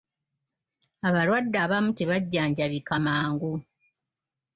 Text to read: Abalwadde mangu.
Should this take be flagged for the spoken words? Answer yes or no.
yes